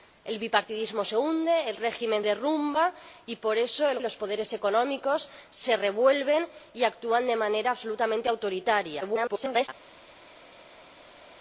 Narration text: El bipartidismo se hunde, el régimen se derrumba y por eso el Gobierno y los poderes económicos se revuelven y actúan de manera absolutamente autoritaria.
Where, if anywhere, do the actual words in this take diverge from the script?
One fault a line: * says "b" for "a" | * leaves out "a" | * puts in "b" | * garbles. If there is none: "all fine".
* leaves out "se"
* leaves out "Gobierno"
* garbles